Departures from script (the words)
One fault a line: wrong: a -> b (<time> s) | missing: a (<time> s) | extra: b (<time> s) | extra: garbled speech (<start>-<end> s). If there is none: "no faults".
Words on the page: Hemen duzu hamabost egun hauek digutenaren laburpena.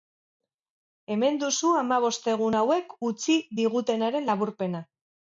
extra: utzi (3.1 s)